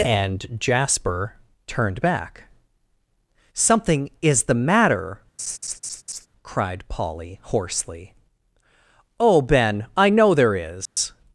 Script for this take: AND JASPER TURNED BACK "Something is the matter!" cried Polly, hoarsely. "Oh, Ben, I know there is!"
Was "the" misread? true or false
false